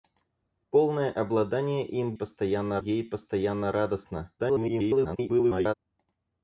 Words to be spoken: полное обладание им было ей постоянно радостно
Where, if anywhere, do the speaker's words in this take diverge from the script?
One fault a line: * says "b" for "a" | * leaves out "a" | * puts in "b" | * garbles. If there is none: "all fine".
* says "постоянно" for "было"
* garbles